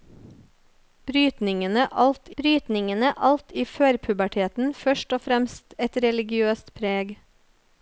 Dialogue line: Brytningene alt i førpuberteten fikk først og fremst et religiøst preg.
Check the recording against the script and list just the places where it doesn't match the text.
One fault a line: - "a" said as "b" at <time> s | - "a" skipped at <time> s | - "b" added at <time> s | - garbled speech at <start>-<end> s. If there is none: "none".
- "brytningene alt" added at 2.4 s
- "fikk" skipped at 4.7 s